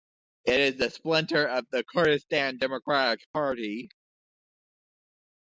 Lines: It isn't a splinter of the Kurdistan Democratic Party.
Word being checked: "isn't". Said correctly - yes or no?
no